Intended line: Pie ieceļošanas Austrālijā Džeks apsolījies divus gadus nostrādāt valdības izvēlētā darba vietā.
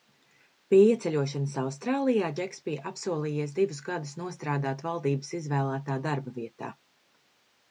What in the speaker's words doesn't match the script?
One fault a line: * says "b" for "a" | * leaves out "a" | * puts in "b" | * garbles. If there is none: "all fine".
* puts in "bija"